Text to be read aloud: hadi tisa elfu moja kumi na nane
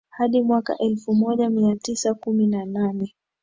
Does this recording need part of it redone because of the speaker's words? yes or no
yes